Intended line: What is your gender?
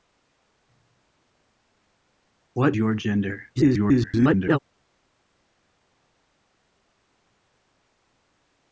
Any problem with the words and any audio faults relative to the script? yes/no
yes